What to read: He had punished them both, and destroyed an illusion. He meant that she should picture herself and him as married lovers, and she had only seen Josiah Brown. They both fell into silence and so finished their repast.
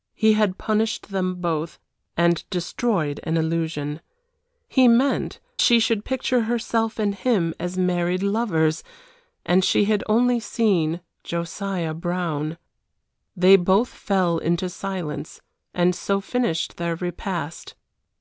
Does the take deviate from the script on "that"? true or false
true